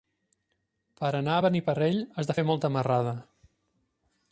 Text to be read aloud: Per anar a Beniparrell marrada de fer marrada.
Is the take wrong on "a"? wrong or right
right